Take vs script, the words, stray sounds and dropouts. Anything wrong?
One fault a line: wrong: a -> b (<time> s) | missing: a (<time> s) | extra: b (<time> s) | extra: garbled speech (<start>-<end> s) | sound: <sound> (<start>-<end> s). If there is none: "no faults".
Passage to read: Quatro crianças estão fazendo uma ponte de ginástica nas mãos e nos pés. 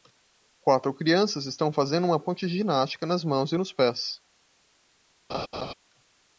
sound: laugh (5.3-5.7 s)